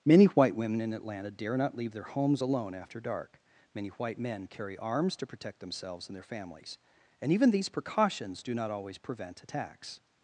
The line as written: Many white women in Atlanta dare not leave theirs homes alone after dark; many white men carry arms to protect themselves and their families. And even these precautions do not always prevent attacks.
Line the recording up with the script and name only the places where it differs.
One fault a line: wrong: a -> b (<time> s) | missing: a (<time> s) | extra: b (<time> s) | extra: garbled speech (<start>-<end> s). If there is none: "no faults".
wrong: theirs -> their (1.9 s)